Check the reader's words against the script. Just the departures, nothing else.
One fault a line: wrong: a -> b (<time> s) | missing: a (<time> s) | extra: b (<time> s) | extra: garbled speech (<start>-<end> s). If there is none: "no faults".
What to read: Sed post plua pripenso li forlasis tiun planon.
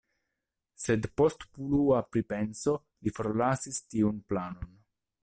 no faults